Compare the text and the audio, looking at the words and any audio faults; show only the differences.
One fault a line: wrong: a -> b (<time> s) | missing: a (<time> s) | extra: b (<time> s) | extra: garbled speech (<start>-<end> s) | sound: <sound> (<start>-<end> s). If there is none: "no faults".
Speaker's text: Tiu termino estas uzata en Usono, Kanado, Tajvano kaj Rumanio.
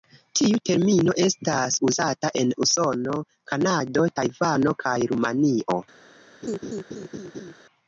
sound: laugh (6.4-7.5 s)